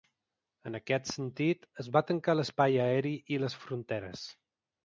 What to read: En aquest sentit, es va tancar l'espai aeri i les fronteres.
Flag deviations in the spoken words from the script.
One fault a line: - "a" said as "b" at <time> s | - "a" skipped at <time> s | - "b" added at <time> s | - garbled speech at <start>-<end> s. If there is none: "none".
none